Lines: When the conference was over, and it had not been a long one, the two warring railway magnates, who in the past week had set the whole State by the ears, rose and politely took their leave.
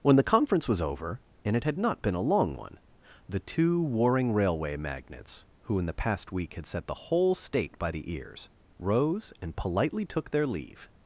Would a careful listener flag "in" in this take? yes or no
no